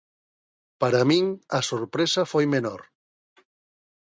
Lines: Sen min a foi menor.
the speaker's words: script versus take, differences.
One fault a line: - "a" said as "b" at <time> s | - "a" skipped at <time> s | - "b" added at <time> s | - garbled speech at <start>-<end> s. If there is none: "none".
- "Sen" said as "Para" at 0.8 s
- "sorpresa" added at 1.7 s